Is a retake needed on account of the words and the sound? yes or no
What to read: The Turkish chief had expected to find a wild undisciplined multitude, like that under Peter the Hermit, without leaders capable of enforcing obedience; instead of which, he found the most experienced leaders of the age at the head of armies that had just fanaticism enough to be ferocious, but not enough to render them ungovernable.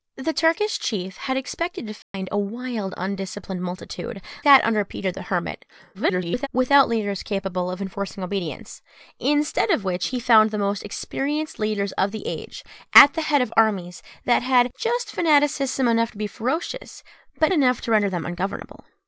yes